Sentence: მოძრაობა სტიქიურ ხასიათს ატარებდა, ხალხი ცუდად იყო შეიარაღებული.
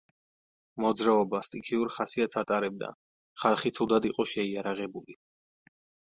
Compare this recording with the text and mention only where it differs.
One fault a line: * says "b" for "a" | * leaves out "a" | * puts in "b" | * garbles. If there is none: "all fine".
all fine